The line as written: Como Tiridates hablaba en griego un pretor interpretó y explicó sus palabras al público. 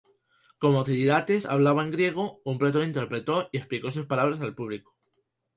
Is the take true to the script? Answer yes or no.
yes